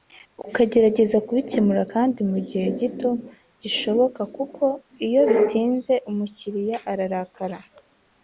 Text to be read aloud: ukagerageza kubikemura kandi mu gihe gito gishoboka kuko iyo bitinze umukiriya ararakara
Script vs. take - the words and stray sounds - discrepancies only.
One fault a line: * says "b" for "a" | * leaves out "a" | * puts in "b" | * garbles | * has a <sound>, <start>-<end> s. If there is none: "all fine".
all fine